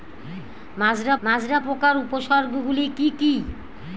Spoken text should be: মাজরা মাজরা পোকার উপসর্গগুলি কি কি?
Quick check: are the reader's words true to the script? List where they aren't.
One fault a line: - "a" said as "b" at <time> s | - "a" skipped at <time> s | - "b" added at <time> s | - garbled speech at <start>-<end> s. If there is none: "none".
none